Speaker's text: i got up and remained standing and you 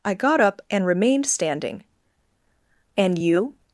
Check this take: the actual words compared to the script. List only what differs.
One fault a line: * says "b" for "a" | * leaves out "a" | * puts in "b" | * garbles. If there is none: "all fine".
all fine